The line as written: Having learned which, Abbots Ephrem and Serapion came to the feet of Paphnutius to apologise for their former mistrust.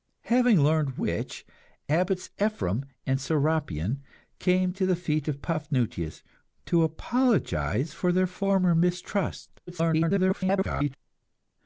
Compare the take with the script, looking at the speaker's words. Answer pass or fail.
fail